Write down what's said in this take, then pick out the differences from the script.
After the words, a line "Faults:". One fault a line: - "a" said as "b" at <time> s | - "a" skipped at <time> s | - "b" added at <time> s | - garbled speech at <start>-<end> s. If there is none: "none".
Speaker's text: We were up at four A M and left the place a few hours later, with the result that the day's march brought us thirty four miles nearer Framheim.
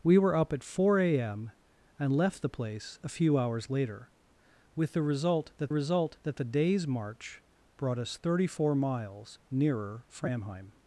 We were up at four A M and left the place a few hours later, with the result that result that the day's march brought us thirty four miles nearer Framheim.
Faults:
- "result that" added at 5.7 s